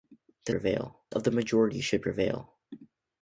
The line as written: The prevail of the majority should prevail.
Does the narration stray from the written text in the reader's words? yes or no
no